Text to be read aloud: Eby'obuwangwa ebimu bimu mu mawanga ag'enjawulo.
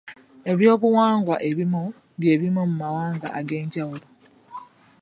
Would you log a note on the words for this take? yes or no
yes